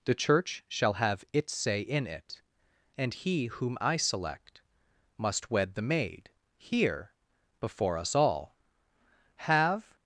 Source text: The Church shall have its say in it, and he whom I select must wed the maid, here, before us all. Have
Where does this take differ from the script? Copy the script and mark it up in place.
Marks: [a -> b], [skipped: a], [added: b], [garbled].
The Church shall have its say in it, and he whom I select must wed the maid, here, before us all. Have